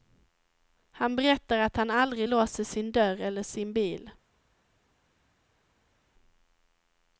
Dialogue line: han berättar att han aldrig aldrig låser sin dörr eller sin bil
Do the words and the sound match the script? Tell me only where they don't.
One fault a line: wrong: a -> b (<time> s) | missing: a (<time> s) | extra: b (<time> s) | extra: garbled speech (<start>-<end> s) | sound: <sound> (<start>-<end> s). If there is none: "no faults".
missing: aldrig (2.3 s)